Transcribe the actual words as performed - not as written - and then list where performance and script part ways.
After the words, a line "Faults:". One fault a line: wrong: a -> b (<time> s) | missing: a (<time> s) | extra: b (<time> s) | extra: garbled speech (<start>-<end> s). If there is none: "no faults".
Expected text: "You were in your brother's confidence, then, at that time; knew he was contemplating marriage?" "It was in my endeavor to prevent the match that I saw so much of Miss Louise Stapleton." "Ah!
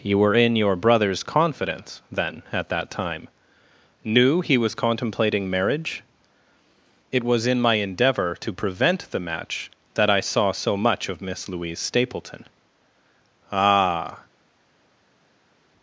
"You were in your brother's confidence, then, at that time; knew he was contemplating marriage?" "It was in my endeavor to prevent the match that I saw so much of Miss Louise Stapleton." "Ah!
Faults:
no faults